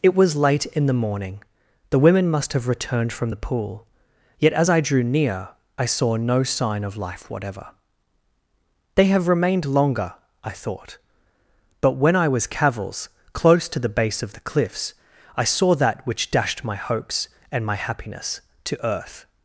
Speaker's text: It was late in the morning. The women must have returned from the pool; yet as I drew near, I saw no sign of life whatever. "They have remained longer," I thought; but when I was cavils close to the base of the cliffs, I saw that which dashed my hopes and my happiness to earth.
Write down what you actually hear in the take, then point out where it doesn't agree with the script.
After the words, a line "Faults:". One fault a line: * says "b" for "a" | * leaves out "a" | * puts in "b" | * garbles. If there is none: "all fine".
It was late in the morning. The women must have returned from the pool; yet as I drew near, I saw no sign of life whatever. "They have remained longer," I thought; but when I was cavils close to the base of the cliffs, I saw that which dashed my hopes and my happiness to earth.
Faults:
all fine